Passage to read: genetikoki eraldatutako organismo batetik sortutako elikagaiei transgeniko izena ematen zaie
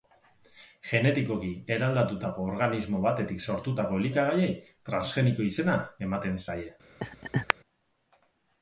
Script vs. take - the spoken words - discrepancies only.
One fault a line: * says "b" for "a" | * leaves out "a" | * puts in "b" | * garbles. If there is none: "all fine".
all fine